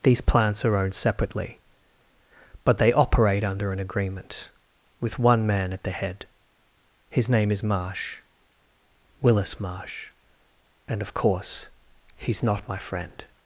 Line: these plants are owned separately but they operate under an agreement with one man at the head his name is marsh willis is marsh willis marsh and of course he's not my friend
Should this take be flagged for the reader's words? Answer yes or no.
yes